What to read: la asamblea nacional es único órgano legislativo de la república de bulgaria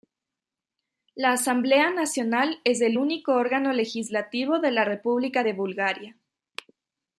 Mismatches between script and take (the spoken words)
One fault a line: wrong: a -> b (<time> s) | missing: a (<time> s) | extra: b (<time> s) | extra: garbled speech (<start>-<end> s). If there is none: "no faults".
extra: el (2.8 s)